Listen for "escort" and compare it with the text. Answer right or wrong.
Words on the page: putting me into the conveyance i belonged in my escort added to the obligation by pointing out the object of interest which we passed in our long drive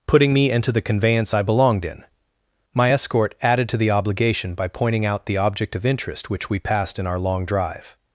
right